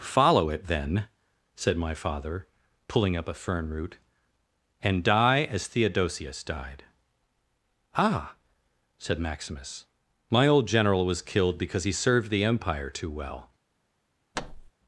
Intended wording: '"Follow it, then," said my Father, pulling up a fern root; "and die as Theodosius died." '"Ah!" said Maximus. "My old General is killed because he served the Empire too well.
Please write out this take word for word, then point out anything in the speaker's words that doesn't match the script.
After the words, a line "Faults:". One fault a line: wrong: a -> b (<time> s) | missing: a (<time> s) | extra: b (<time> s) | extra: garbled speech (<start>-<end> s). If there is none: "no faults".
'"Follow it, then," said my Father, pulling up a fern root; "and die as Theodosius died." '"Ah!" said Maximus. "My old General was killed because he served the Empire too well.
Faults:
wrong: is -> was (11.0 s)